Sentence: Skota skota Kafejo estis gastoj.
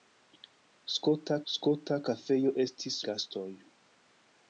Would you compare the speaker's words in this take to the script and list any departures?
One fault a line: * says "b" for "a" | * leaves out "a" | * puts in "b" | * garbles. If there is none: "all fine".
all fine